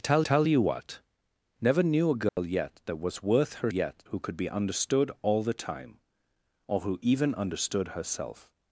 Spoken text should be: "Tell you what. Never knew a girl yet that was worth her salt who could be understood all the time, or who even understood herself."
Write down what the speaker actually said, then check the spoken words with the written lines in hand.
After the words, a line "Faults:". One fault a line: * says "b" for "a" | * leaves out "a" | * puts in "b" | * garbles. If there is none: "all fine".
"Tell tell you what. Never knew a girl yet that was worth her yet who could be understood all the time, or who even understood herself."
Faults:
* puts in "tell"
* says "yet" for "salt"